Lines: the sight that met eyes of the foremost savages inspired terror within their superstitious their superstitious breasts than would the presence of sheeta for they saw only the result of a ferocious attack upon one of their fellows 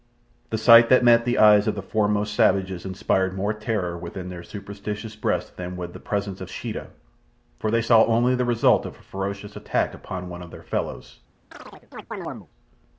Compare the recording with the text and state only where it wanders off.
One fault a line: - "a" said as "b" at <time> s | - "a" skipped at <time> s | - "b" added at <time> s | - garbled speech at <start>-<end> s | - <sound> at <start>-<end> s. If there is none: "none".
- "the" added at 1.3 s
- "more" added at 3.4 s
- "their superstitious" skipped at 5.1 s
- chirp at 11.5-12.5 s